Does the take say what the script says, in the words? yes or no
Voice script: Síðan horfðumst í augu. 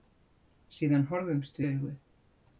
yes